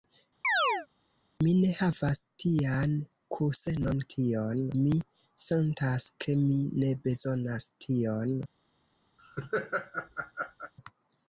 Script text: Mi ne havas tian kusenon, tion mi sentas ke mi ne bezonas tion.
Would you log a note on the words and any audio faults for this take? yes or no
yes